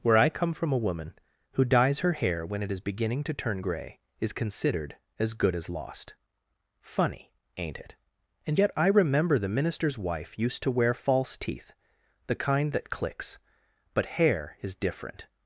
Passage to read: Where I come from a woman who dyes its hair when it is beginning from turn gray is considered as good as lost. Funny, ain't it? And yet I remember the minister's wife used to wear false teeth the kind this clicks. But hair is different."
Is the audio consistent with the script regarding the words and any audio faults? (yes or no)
no